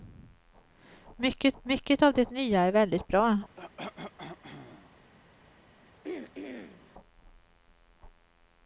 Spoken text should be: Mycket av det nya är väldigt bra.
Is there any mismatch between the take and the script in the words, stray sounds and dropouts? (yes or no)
yes